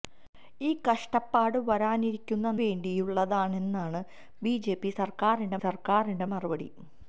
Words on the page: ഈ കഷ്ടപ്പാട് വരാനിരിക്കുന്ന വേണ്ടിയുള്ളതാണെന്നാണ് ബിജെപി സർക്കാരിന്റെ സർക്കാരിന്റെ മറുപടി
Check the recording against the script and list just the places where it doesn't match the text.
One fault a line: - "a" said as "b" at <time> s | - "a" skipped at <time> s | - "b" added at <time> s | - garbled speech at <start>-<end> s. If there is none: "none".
none